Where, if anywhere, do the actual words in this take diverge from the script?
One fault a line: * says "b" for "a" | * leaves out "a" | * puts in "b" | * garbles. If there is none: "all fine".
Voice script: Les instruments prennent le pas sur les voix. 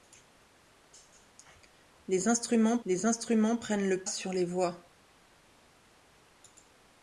* puts in "les instruments"
* leaves out "pas"